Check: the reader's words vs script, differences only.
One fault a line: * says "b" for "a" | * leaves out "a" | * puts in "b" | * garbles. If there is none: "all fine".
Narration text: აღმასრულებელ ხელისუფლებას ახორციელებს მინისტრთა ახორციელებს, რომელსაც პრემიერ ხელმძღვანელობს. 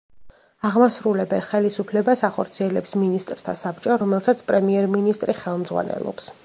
* says "საბჭო" for "ახორციელებს"
* puts in "მინისტრი"